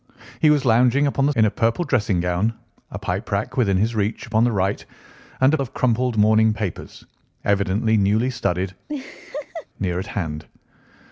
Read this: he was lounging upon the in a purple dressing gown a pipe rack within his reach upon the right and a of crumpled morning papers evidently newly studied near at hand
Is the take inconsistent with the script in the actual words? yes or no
no